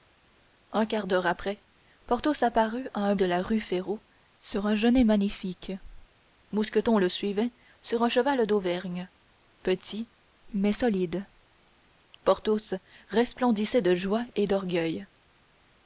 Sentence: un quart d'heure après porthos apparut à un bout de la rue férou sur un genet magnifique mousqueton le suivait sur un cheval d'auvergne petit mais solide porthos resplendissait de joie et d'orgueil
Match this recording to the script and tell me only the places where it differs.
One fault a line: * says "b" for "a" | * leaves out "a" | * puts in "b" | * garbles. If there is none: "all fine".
* leaves out "bout"